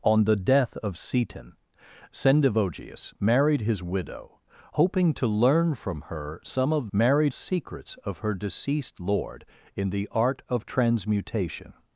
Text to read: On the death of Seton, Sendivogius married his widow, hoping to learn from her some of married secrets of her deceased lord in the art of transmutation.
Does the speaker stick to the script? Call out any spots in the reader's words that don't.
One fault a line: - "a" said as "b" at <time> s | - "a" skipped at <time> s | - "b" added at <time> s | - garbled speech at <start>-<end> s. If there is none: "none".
none